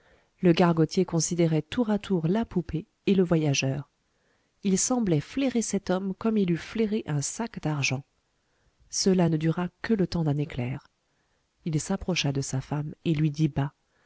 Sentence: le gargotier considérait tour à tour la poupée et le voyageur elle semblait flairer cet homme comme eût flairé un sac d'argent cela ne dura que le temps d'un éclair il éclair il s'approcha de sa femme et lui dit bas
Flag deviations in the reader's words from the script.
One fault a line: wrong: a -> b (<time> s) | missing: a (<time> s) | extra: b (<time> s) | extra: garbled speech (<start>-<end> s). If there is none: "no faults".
wrong: elle -> il (4.6 s)
extra: il (6.4 s)
missing: éclair il (11.8 s)